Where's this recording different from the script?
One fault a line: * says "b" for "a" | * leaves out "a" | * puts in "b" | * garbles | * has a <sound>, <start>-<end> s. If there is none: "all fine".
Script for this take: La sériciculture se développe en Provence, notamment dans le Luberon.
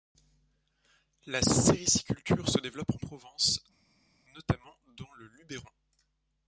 all fine